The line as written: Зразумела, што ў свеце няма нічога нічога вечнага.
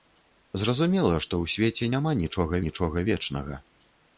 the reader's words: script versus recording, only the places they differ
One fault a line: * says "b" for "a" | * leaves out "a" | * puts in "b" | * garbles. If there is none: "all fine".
all fine